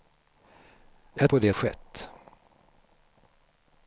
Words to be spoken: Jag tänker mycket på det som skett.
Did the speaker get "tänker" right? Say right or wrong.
wrong